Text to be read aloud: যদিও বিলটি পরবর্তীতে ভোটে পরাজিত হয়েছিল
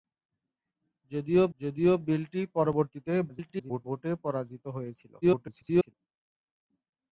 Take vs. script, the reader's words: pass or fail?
fail